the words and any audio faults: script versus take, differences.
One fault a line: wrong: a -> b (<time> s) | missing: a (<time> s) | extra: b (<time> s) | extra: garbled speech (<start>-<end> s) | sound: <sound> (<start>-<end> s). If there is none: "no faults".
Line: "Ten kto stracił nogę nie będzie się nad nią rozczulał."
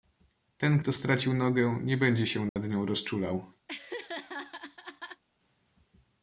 sound: dropout (2.5-2.6 s)
sound: laugh (3.7-5.2 s)